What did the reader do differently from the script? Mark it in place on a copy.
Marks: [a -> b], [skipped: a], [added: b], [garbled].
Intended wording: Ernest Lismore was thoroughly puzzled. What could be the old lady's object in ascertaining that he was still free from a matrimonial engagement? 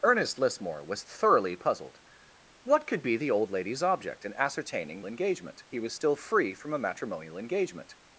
Ernest Lismore was thoroughly puzzled. What could be the old lady's object in ascertaining [that -> engagement] he was still free from a matrimonial engagement?